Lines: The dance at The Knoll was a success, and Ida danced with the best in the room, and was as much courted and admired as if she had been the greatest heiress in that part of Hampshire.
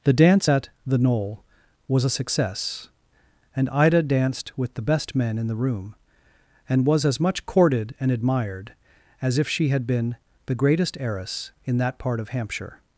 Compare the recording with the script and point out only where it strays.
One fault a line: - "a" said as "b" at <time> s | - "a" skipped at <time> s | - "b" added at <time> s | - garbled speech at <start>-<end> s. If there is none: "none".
- "men" added at 5.1 s